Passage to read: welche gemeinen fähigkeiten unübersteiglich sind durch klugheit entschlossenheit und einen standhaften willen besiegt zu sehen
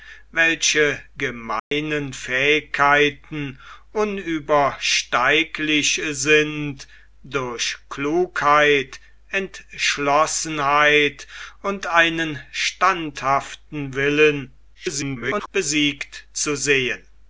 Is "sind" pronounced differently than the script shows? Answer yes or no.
no